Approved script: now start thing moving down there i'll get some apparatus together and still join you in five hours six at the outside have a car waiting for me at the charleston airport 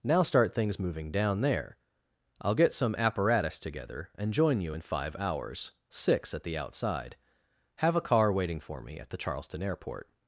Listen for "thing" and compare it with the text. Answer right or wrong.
wrong